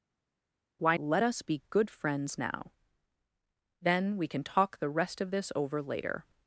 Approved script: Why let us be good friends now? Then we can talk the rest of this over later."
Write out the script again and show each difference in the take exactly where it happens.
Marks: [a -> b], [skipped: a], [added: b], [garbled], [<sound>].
Why let us be good friends now? Then we can talk the rest of this over later."